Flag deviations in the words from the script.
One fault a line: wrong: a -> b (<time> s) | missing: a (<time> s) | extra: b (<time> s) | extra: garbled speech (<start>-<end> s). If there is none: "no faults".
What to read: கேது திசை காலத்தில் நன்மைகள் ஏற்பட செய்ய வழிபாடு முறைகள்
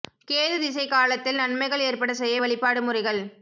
no faults